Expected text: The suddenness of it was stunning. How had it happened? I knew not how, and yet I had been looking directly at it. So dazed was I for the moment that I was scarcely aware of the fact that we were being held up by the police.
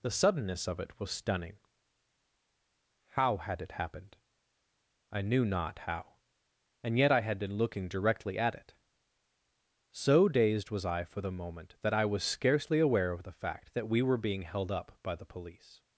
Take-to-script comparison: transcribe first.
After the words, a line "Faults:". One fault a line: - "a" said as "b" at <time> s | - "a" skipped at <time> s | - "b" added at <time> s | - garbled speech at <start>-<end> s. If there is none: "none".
The suddenness of it was stunning. How had it happened? I knew not how, and yet I had been looking directly at it. So dazed was I for the moment that I was scarcely aware of the fact that we were being held up by the police.
Faults:
none